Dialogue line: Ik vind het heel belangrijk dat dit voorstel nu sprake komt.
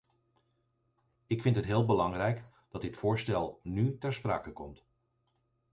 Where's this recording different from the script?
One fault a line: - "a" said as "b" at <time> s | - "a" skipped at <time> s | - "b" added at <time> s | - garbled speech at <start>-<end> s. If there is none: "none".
- "ter" added at 4.0 s